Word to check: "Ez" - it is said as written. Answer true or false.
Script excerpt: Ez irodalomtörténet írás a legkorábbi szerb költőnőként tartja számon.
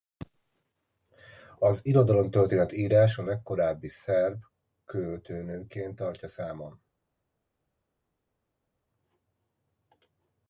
false